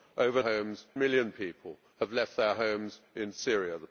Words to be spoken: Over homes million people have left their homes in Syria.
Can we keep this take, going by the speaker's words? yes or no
yes